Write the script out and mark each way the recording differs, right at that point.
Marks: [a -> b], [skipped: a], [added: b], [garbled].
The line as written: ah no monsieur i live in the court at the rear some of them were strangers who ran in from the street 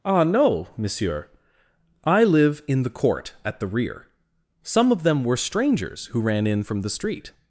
ah no monsieur i live in the court at the rear some of them were strangers who ran in from the street